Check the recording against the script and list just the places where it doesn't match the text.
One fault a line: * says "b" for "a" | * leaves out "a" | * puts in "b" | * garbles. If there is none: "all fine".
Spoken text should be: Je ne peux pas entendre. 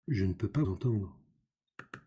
all fine